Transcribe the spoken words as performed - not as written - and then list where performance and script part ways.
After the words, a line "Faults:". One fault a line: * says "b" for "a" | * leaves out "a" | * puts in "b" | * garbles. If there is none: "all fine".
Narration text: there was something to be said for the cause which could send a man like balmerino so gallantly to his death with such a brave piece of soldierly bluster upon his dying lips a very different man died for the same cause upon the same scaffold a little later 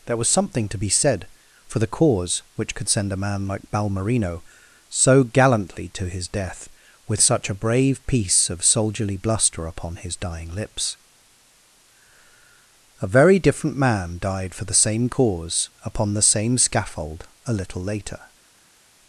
there was something to be said for the cause which could send a man like balmerino so gallantly to his death with such a brave piece of soldierly bluster upon his dying lips a very different man died for the same cause upon the same scaffold a little later
Faults:
all fine